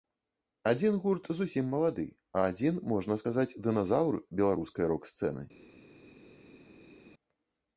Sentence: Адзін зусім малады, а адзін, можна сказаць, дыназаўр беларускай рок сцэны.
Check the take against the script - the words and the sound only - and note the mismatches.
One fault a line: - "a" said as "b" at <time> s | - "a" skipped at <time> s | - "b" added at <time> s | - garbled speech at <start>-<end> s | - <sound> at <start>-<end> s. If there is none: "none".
- "гурт" added at 1.0 s